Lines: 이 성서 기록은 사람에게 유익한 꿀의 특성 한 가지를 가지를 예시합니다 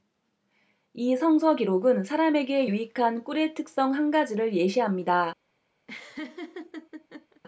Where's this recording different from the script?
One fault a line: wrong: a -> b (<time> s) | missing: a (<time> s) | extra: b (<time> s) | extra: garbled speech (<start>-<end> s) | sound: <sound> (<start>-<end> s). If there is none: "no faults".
missing: 가지를 (4.5 s)
sound: laugh (5.9-7.4 s)